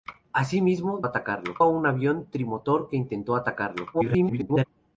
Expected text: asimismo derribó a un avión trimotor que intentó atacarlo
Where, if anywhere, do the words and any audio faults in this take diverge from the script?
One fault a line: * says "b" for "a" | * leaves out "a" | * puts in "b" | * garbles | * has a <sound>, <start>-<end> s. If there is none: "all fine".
* says "atacarlo" for "derribó"
* garbles